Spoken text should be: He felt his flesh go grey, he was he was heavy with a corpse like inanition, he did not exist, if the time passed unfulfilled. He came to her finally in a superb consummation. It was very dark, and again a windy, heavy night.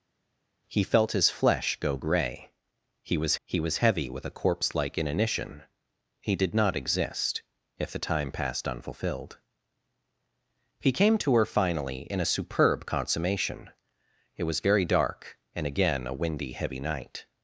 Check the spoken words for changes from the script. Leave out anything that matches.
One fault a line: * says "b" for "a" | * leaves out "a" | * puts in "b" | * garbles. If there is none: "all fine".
all fine